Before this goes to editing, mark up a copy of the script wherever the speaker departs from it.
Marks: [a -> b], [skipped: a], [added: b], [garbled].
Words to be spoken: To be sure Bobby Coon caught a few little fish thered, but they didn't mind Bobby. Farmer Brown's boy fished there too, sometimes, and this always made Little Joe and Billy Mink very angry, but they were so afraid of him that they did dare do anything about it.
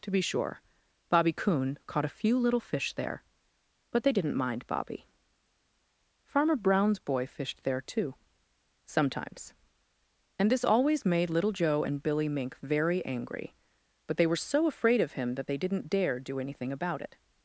To be sure Bobby Coon caught a few little fish [thered, -> there] but they didn't mind Bobby. Farmer Brown's boy fished there too, sometimes, and this always made Little Joe and Billy Mink very angry, but they were so afraid of him that they [did -> didn't] dare do anything about it.